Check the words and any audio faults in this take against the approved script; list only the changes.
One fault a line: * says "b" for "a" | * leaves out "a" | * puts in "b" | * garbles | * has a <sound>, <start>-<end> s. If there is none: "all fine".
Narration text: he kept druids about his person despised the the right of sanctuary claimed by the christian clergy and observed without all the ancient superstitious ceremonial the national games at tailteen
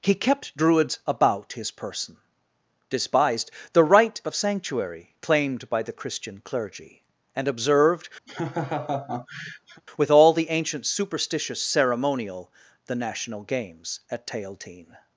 * leaves out "the"
* has a laugh, 8.3-9.8 s
* says "with" for "without"